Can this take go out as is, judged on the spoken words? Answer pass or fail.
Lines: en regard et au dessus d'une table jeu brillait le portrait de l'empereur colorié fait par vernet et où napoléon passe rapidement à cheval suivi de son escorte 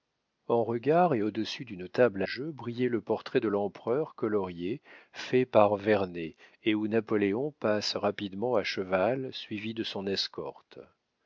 pass